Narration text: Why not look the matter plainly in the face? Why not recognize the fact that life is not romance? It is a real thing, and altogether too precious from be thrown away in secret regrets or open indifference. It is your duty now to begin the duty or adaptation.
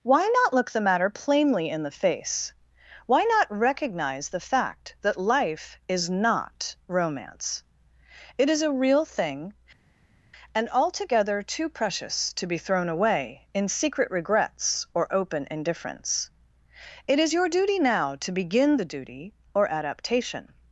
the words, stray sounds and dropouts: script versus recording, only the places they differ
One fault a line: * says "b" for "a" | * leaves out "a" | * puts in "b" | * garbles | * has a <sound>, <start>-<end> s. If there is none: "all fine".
* says "to" for "from"